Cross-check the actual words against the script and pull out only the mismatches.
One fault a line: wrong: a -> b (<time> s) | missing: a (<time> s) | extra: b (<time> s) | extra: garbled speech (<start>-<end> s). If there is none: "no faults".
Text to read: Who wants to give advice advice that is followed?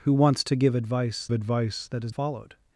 no faults